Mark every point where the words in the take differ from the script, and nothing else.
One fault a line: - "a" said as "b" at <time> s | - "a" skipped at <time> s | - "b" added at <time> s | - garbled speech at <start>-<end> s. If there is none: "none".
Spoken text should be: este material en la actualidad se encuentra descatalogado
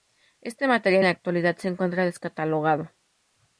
- "en" skipped at 1.1 s